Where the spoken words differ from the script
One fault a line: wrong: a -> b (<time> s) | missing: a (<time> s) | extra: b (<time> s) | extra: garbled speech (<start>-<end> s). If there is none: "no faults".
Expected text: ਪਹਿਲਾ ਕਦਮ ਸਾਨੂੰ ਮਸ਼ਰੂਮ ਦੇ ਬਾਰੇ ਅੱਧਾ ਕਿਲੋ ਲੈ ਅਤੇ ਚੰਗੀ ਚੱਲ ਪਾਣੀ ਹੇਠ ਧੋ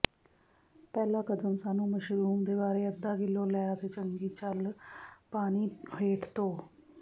no faults